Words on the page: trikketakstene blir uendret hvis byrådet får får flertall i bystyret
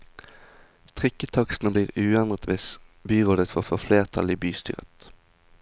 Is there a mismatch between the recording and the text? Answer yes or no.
no